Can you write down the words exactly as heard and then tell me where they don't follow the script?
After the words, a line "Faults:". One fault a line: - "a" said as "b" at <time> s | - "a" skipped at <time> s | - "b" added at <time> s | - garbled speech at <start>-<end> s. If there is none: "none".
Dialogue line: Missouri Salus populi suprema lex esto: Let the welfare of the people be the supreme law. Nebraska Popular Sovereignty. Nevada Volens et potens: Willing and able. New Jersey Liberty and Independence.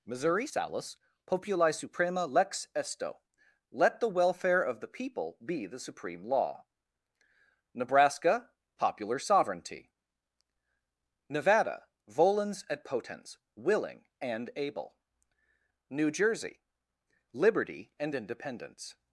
Missouri Salus populi suprema lex esto: Let the welfare of the people be the supreme law. Nebraska Popular Sovereignty. Nevada Volens et potens: Willing and able. New Jersey Liberty and Independence.
Faults:
none